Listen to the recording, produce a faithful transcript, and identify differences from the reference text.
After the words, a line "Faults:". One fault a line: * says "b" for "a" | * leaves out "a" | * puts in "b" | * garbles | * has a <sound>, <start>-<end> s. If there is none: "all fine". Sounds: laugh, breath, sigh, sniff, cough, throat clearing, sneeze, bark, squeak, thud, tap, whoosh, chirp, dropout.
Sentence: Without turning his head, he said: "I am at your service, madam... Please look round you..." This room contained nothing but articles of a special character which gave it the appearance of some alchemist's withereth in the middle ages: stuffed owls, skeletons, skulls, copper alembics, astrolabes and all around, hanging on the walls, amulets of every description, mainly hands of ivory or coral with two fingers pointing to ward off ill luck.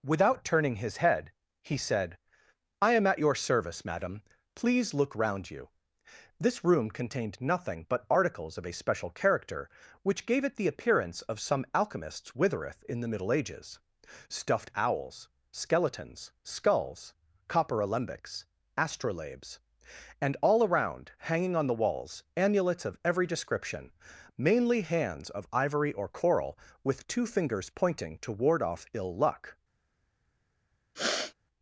Without turning his head, he said: "I am at your service, madam... Please look round you..." This room contained nothing but articles of a special character which gave it the appearance of some alchemist's withereth in the middle ages: stuffed owls, skeletons, skulls, copper alembics, astrolabes and all around, hanging on the walls, amulets of every description, mainly hands of ivory or coral with two fingers pointing to ward off ill luck.
Faults:
* has a sniff, 30.9-31.3 s